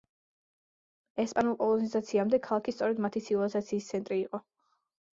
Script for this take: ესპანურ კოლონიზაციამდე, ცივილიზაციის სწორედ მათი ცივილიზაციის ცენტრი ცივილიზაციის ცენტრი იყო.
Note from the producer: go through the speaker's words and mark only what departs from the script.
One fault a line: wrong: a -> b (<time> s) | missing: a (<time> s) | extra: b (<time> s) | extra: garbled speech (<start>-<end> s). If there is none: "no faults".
wrong: ცივილიზაციის -> ქალაქი (2.5 s)
missing: ცივილიზაციის ცენტრი (4.2 s)